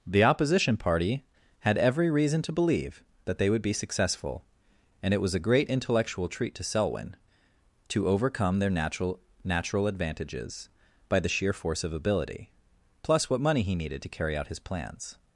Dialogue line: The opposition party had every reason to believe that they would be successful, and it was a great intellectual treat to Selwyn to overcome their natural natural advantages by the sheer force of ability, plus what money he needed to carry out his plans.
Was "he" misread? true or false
false